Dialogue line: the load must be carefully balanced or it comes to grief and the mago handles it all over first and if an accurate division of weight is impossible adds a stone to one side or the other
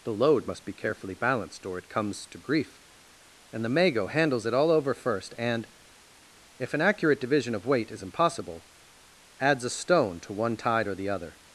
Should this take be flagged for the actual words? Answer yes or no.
yes